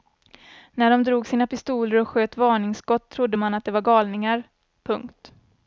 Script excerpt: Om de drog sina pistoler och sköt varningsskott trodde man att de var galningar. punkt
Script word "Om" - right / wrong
wrong